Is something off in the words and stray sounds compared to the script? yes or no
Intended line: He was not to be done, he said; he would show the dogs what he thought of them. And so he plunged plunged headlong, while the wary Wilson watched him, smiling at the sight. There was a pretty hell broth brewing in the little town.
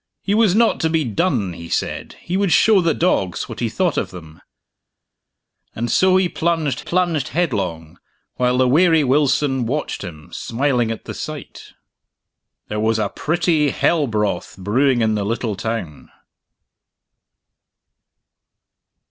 no